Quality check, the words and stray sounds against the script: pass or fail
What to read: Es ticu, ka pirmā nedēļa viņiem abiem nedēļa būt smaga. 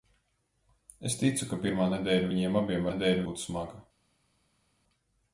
pass